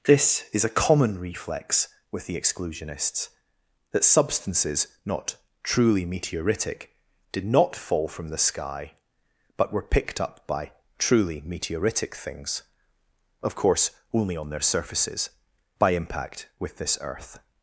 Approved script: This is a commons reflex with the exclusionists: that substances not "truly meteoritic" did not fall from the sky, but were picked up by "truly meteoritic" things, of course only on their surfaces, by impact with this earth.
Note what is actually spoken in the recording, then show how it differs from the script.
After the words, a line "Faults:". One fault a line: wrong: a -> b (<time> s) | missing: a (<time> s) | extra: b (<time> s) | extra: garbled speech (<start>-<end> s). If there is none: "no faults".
This is a common reflex with the exclusionists: that substances not "truly meteoritic" did not fall from the sky, but were picked up by "truly meteoritic" things, of course only on their surfaces, by impact with this earth.
Faults:
wrong: commons -> common (0.7 s)